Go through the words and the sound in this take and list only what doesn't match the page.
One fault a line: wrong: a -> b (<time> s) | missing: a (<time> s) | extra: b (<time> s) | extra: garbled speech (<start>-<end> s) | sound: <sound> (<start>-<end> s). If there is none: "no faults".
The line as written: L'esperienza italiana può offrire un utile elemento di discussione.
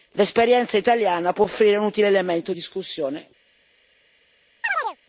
missing: di (2.5 s)
sound: chirp (4.6-5.0 s)